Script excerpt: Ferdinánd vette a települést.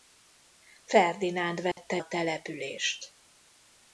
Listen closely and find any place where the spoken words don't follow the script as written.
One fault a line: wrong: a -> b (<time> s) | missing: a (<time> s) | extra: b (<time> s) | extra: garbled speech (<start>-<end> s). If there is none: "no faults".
no faults